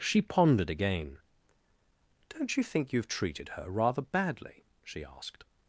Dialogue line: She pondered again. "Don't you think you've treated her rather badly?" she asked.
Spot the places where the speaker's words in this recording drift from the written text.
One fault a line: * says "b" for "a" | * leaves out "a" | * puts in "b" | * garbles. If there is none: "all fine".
all fine